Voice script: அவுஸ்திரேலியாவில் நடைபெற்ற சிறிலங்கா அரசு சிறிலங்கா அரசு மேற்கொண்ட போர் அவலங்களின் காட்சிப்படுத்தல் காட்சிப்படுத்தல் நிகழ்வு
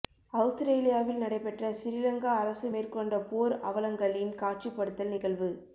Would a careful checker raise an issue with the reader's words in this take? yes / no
yes